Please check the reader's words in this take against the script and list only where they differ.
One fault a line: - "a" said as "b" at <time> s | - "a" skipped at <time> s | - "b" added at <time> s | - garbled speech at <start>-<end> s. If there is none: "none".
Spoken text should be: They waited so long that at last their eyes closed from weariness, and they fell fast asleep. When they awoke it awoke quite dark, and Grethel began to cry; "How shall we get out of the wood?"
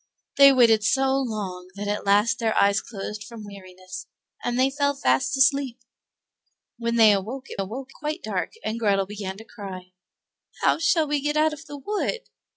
none